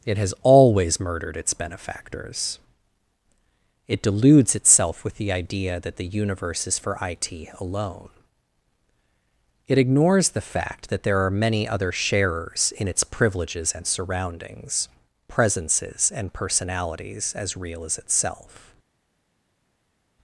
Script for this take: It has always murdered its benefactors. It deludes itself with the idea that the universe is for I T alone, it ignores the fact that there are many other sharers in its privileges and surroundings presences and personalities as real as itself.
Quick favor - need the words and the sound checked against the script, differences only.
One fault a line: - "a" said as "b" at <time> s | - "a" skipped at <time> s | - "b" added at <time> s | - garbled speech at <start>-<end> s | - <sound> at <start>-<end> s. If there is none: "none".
none